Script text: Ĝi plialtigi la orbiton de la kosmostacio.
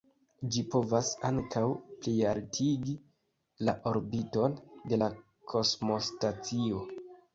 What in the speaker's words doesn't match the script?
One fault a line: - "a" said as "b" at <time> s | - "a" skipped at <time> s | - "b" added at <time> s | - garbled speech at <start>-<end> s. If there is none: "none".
- "povas ankaŭ" added at 0.7 s